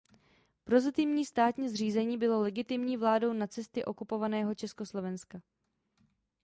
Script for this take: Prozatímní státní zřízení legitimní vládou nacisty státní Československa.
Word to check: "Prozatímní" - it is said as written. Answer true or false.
true